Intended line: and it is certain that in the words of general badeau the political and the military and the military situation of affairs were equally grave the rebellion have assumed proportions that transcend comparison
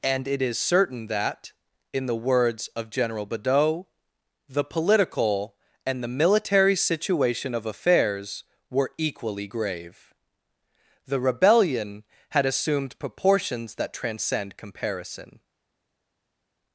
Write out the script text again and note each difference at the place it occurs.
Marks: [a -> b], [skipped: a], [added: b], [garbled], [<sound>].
and it is certain that in the words of general badeau the political and the military [skipped: and the military] situation of affairs were equally grave the rebellion [have -> had] assumed proportions that transcend comparison